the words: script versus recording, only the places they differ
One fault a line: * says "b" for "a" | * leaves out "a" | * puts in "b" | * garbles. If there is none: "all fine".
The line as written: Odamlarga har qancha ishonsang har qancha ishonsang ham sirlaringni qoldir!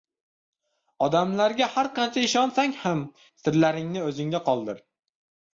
* leaves out "har qancha ishonsang"
* puts in "o‘zingda"